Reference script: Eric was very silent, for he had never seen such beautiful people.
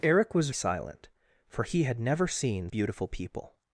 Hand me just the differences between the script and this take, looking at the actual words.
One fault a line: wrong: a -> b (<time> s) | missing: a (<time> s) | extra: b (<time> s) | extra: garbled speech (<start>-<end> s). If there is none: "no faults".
missing: very (0.5 s)
missing: such (2.7 s)